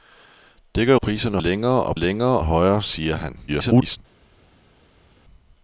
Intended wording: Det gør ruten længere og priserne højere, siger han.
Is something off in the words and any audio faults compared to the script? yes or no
yes